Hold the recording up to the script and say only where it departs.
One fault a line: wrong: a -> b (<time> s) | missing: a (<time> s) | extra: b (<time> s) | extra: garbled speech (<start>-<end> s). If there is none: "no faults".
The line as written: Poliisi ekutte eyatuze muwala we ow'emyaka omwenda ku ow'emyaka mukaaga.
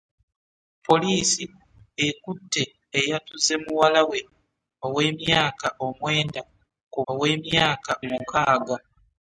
no faults